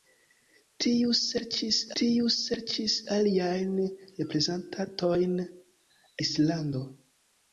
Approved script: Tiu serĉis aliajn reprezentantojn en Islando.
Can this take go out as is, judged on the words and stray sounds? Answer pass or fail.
fail